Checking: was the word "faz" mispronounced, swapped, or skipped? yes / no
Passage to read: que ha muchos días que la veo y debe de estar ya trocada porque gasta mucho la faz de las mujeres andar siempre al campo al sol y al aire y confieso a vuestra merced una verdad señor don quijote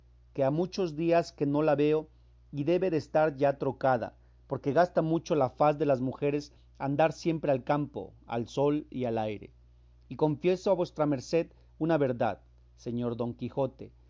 no